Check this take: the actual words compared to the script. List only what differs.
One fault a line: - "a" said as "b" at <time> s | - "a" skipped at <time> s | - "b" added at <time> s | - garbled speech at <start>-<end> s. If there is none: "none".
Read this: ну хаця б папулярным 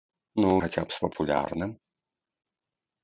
none